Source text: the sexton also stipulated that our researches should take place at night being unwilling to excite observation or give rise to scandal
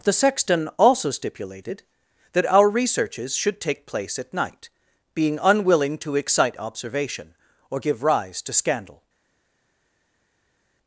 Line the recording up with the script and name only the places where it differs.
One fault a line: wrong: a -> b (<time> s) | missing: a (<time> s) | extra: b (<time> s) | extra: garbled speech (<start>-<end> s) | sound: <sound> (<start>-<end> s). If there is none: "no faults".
no faults